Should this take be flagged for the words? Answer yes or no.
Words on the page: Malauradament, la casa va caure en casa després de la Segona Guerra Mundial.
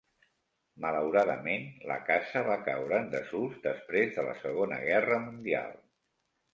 yes